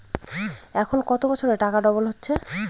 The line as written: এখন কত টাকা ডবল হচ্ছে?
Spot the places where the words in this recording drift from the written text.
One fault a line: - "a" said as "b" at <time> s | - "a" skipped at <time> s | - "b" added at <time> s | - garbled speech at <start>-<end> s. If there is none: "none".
- "বছরে" added at 1.3 s